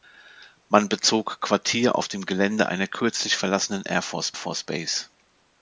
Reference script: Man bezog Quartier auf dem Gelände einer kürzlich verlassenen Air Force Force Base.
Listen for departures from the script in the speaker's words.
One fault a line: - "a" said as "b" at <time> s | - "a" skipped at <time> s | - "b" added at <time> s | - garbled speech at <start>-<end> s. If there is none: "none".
none